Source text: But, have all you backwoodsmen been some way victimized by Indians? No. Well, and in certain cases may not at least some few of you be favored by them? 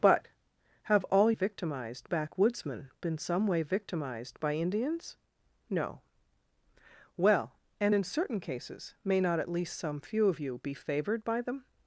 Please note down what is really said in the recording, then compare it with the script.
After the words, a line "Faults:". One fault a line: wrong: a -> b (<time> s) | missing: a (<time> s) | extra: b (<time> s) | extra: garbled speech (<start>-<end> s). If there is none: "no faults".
But, have all victimized backwoodsmen been some way victimized by Indians? No. Well, and in certain cases may not at least some few of you be favored by them?
Faults:
wrong: you -> victimized (1.3 s)